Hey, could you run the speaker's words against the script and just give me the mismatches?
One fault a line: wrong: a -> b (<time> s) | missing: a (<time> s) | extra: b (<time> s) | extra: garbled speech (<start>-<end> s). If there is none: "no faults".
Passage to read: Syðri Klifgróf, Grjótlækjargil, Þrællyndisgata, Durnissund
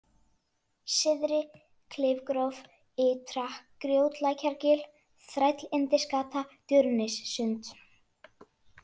extra: Ytra (3.1 s)